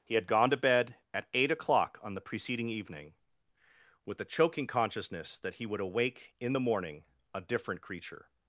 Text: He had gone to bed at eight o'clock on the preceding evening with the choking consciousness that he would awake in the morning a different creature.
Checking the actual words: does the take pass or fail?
pass